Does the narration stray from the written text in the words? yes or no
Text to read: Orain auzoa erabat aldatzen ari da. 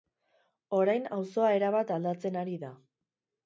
no